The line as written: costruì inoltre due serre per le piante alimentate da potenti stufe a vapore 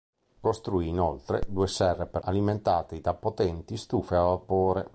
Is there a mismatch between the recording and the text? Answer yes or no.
yes